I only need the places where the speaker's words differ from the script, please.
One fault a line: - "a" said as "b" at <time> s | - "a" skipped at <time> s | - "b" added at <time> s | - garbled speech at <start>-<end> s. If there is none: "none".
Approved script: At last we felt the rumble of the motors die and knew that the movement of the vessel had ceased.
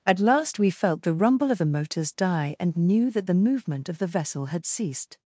none